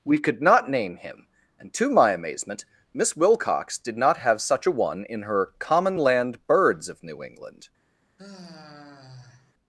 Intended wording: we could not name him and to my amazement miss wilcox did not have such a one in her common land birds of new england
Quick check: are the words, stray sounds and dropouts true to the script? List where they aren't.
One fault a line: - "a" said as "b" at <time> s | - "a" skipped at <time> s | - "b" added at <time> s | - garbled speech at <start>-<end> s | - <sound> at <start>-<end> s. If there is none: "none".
- sigh at 8.2-9.5 s